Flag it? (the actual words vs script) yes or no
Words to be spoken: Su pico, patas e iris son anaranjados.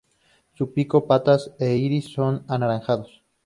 no